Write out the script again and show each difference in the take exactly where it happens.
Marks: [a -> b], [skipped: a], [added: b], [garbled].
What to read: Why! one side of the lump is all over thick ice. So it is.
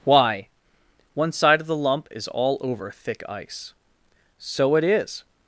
Why! one side of the lump is all over thick ice. So it is.